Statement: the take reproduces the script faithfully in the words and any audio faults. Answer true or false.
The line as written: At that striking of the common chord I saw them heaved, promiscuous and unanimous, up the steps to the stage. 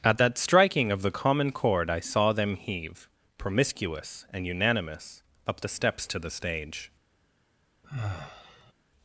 false